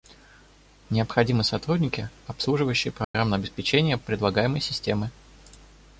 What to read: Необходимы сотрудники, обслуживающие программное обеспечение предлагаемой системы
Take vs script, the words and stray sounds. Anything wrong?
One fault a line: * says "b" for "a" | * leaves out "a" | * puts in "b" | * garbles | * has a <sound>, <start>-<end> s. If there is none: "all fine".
* has a dropout, 3.0-3.1 s